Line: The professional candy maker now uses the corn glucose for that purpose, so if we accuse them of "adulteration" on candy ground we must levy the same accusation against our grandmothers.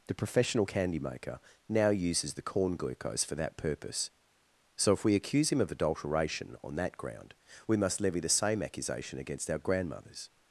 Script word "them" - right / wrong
wrong